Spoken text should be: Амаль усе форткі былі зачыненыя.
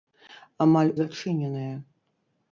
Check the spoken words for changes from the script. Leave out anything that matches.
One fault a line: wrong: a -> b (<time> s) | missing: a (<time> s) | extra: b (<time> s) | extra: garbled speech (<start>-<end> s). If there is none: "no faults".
missing: усе форткі былі (0.9 s)